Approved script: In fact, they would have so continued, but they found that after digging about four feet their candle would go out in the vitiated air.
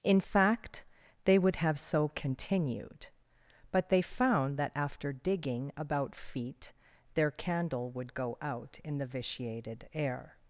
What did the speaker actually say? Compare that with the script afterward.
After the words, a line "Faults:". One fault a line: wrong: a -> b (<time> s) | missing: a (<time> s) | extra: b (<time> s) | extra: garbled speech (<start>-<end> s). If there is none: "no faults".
In fact, they would have so continued, but they found that after digging about feet their candle would go out in the vitiated air.
Faults:
missing: four (6.2 s)